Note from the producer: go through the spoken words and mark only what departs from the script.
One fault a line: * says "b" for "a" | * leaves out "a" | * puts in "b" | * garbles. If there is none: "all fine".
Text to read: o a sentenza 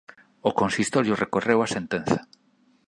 * puts in "consistorio recorreu"